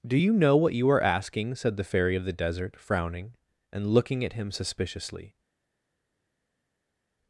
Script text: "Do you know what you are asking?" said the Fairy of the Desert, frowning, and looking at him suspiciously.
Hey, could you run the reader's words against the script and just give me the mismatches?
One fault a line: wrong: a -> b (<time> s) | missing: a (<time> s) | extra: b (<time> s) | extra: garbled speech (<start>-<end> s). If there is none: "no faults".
no faults